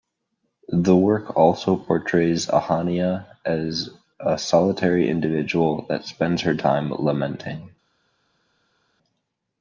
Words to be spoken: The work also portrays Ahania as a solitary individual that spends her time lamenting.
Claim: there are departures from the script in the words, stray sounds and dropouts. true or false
false